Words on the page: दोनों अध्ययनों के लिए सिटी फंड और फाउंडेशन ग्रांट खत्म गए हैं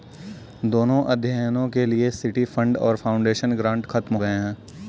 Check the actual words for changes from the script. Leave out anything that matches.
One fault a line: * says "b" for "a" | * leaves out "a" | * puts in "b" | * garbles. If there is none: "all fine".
all fine